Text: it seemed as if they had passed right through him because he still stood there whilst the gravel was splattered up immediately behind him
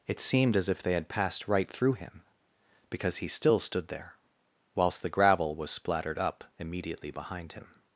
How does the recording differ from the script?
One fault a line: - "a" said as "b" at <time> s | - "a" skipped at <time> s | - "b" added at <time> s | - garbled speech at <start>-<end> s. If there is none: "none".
none